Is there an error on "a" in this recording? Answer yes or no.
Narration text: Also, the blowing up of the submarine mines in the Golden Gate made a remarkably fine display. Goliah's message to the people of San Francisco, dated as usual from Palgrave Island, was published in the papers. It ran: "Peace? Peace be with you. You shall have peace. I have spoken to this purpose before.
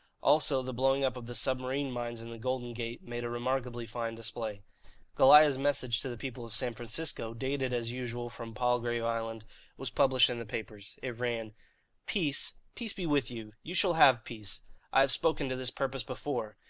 no